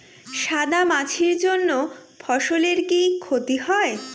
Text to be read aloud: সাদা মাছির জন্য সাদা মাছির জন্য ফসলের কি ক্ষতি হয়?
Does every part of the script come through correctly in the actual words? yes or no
no